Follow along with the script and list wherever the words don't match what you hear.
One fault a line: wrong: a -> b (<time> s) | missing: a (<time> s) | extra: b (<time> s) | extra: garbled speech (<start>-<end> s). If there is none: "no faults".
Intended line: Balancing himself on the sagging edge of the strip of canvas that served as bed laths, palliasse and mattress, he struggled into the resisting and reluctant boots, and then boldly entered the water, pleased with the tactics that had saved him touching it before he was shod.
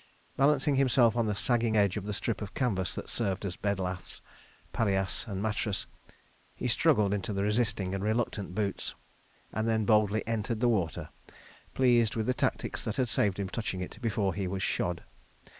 no faults